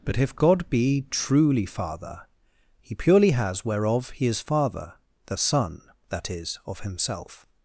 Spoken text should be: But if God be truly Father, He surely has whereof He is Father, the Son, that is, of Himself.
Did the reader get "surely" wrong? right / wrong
wrong